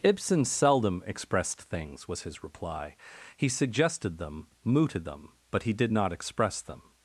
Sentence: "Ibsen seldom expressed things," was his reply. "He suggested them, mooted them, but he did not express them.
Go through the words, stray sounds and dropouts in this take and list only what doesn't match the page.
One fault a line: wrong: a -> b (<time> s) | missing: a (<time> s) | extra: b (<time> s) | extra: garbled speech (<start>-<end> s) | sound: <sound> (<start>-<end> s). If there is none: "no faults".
no faults